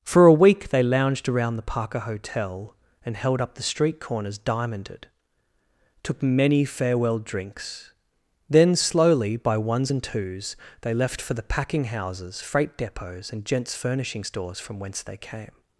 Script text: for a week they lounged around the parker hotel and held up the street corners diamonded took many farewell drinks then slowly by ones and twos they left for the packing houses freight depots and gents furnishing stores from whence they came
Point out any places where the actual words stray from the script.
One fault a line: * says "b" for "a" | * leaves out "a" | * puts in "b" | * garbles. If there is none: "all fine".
all fine